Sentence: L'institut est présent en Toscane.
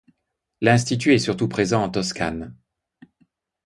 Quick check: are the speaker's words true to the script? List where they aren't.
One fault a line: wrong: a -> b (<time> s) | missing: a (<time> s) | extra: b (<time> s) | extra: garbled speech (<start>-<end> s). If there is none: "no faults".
extra: surtout (1.2 s)